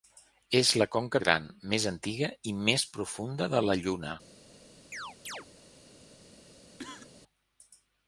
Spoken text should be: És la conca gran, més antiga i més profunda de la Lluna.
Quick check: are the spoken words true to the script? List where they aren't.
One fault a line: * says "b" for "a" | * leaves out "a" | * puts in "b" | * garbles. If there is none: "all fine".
all fine